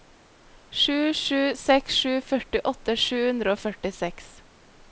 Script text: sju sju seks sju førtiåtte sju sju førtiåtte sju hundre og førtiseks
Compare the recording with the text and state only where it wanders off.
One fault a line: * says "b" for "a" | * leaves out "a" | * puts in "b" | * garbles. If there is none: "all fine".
* leaves out "sju førtiåtte sju"